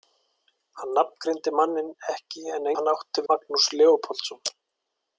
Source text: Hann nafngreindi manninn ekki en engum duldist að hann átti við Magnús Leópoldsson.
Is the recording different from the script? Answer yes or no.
yes